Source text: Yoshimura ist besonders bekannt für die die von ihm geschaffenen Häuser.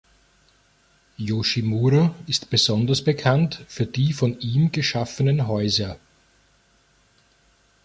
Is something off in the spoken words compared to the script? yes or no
yes